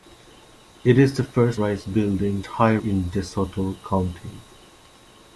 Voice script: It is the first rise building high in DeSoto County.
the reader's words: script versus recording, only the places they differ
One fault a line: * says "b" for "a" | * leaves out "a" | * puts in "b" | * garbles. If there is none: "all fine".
all fine